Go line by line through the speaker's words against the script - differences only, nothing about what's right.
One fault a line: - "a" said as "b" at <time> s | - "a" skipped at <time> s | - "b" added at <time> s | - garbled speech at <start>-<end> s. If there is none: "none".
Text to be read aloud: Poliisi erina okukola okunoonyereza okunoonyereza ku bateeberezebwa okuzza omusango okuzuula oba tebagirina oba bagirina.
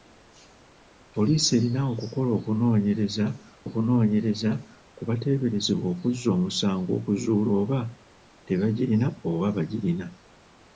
none